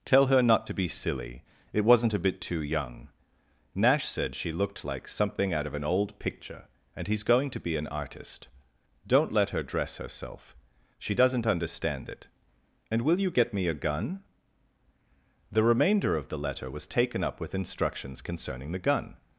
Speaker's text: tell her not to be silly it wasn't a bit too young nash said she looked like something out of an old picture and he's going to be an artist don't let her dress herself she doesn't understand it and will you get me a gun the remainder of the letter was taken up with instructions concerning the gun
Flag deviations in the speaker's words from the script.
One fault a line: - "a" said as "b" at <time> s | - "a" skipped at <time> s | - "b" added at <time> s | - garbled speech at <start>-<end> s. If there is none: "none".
none